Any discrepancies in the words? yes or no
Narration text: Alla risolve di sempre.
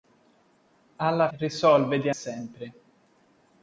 no